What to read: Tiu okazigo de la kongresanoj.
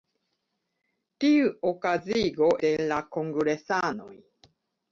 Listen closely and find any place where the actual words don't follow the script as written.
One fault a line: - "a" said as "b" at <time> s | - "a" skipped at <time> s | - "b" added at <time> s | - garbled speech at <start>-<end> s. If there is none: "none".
none